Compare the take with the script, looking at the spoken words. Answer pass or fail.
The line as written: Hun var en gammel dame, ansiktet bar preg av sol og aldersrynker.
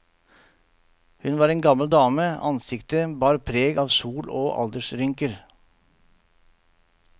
pass